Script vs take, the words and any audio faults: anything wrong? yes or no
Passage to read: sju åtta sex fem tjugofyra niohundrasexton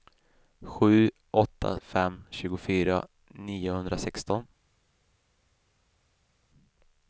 yes